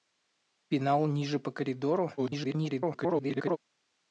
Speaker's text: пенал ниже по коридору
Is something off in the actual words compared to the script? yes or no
yes